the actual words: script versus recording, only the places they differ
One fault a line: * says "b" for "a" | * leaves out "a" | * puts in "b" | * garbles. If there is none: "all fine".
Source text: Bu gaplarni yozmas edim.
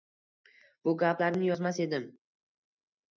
all fine